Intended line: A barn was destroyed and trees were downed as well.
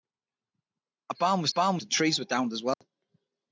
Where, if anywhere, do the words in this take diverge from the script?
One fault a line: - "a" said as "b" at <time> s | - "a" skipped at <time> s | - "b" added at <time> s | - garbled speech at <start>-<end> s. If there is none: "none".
- "destroyed" said as "barn" at 1.5 s